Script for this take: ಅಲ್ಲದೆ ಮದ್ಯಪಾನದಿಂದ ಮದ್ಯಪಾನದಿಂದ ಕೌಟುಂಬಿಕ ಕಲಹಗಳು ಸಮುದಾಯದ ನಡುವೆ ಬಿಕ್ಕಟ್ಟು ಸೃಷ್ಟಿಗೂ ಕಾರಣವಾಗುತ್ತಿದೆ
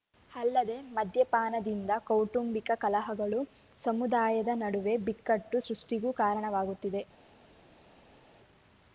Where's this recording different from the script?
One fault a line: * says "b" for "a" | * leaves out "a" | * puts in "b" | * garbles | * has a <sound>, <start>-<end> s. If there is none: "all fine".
* leaves out "ಮದ್ಯಪಾನದಿಂದ"